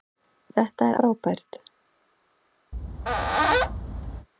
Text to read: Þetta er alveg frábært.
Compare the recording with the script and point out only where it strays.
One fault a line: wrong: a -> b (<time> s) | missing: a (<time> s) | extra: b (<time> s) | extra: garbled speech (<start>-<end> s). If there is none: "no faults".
missing: alveg (1.0 s)